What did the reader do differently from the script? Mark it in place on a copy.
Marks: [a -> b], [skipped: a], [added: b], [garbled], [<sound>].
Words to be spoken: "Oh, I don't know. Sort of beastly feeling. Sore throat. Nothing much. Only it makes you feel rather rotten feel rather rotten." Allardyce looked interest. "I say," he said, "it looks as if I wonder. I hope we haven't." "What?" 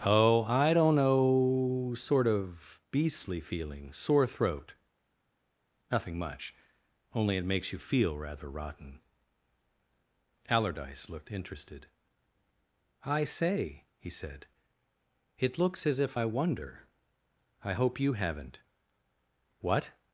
"Oh, I don't know. Sort of beastly feeling. Sore throat. Nothing much. Only it makes you feel rather rotten [skipped: feel rather rotten."] Allardyce looked [interest. -> interested] "I say," he said, "it looks as if I wonder. I hope [we -> you] haven't." "What?"